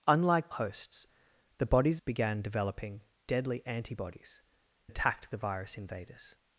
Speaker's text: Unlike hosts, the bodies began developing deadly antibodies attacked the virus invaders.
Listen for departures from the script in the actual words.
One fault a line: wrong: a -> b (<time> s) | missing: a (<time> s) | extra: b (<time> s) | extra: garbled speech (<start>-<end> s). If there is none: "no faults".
no faults